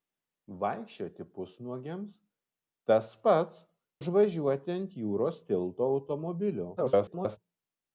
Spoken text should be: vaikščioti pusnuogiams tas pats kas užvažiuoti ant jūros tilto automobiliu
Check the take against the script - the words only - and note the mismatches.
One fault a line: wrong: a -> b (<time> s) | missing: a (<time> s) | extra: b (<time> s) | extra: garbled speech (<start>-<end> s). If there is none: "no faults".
missing: kas (3.6 s)
extra: garbled speech (6.8-7.4 s)